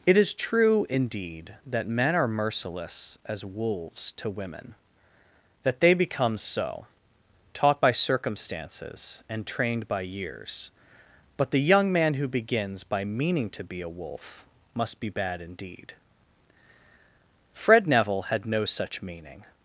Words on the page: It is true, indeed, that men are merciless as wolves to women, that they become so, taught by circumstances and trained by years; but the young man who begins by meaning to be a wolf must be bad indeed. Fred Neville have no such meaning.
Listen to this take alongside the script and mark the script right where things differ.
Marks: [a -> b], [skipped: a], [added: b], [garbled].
It is true, indeed, that men are merciless as wolves to women, that they become so, taught by circumstances and trained by years; but the young man who begins by meaning to be a wolf must be bad indeed. Fred Neville [have -> had] no such meaning.